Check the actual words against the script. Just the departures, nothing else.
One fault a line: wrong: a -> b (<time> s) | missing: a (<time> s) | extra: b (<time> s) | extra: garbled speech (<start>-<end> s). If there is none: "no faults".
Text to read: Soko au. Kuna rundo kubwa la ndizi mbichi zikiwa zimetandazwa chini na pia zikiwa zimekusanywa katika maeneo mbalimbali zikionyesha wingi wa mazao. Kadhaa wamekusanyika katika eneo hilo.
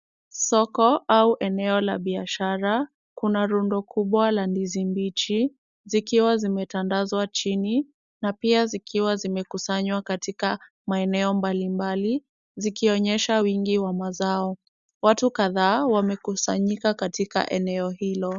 extra: eneo la biashara (1.4 s)
extra: Watu (15.0 s)